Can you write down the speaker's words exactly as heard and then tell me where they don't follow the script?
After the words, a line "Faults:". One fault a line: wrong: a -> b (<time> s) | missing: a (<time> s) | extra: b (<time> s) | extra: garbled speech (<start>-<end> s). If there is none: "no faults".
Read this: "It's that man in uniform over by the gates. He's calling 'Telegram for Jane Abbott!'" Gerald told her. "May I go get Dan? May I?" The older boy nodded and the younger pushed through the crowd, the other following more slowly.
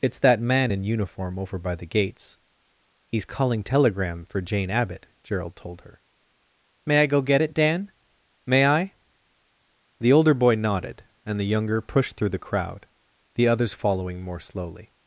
"It's that man in uniform over by the gates. He's calling 'Telegram for Jane Abbott!'" Gerald told her. "May I go get it, Dan? May I?" The older boy nodded and the younger pushed through the crowd, the others following more slowly.
Faults:
extra: it (7.4 s)
wrong: other -> others (13.5 s)